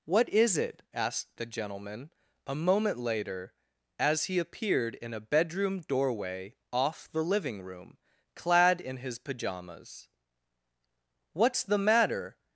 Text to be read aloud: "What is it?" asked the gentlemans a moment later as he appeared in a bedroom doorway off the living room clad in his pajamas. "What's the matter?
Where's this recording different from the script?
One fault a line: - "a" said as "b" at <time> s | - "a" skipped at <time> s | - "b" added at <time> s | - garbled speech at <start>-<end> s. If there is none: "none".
- "gentlemans" said as "gentleman" at 1.4 s